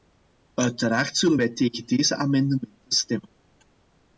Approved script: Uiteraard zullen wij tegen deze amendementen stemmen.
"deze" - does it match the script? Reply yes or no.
yes